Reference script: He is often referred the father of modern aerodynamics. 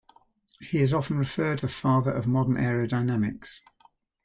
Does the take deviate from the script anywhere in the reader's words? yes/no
no